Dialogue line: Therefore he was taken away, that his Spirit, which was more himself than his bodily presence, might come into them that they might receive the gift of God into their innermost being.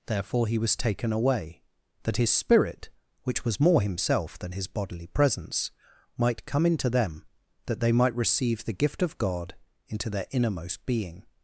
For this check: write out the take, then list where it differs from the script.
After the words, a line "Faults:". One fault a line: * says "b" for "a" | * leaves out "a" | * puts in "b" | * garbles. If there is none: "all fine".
Therefore he was taken away, that his Spirit, which was more himself than his bodily presence, might come into them that they might receive the gift of God into their innermost being.
Faults:
all fine